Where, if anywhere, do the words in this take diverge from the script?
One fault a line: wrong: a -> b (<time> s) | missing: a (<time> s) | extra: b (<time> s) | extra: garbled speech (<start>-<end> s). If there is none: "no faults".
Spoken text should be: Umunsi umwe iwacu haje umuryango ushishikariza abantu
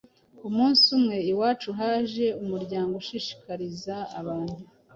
no faults